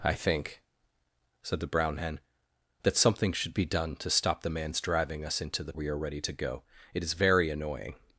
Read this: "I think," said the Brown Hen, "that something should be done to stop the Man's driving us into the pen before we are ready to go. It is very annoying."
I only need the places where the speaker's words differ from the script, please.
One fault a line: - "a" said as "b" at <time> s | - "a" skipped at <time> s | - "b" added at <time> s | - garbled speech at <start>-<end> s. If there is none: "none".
- "pen before" skipped at 5.7 s